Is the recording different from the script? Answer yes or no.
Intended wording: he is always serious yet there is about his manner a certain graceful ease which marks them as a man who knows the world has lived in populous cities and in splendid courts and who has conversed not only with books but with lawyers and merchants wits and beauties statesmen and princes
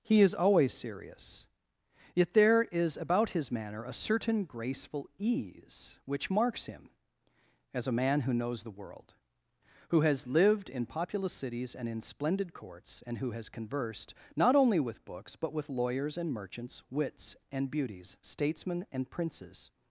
yes